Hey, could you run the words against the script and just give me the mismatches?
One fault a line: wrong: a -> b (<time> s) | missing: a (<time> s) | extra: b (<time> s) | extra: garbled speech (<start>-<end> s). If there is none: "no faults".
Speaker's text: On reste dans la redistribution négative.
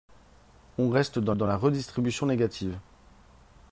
extra: dans (1.3 s)